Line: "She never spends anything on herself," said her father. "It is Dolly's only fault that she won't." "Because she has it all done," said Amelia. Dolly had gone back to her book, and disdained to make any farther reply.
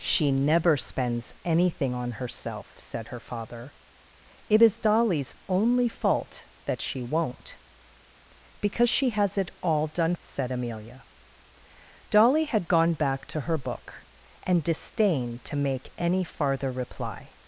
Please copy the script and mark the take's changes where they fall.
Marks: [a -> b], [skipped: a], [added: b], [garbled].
"She never spends anything on herself," said her father. "It is Dolly's only fault that she won't." "Because she has it all done," said Amelia. Dolly had gone back to her book, and disdained to make any farther reply.